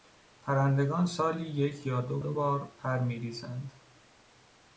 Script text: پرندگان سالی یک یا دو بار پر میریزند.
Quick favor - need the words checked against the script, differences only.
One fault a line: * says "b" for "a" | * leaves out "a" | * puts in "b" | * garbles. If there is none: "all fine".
* puts in "دو"